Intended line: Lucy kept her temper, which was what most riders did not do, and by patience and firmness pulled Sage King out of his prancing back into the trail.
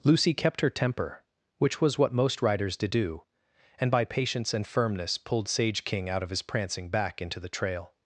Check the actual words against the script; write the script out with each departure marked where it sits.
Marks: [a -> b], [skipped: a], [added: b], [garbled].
Lucy kept her temper, which was what most riders did [skipped: not] do, and by patience and firmness pulled Sage King out of his prancing back into the trail.